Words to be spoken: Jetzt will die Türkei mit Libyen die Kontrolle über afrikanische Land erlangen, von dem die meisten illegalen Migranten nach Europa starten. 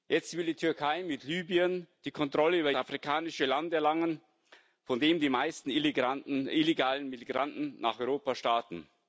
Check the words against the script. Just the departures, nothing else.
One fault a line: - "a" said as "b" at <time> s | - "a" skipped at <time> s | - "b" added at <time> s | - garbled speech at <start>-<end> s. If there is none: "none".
none